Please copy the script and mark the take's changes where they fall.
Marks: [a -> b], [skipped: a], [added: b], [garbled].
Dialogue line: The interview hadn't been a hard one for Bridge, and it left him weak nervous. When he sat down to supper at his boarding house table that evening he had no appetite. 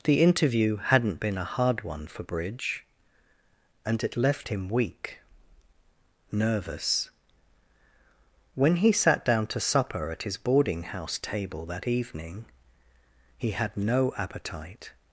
The interview hadn't been a hard one for Bridge, and it left him weak nervous. When he sat down to supper at his boarding house table that evening he had no appetite.